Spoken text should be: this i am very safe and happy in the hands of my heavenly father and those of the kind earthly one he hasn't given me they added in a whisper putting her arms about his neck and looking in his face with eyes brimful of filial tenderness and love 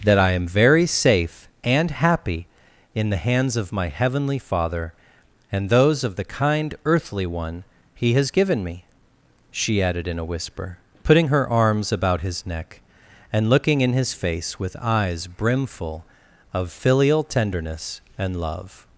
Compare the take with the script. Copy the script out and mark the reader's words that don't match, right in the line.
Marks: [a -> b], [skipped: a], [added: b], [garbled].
[this -> that] i am very safe and happy in the hands of my heavenly father and those of the kind earthly one he [hasn't -> has] given me [they -> she] added in a whisper putting her arms about his neck and looking in his face with eyes brimful of filial tenderness and love